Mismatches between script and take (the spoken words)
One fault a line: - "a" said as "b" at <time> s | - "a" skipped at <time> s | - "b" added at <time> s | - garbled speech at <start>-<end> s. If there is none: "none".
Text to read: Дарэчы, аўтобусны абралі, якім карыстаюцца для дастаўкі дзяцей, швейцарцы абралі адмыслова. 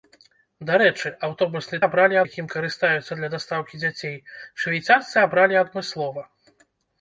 none